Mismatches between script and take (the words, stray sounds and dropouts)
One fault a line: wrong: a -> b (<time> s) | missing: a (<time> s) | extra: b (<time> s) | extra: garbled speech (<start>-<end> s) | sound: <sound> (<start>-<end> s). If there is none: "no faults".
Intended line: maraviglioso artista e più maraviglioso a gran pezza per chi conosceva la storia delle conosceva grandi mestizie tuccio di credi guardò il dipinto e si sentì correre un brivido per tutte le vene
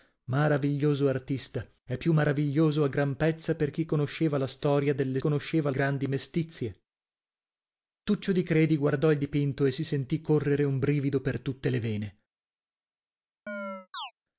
sound: chirp (13.5-14.1 s)